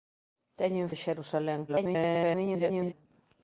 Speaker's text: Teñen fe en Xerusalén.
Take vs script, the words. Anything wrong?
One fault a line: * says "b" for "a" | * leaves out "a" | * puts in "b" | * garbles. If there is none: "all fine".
* leaves out "fe"
* garbles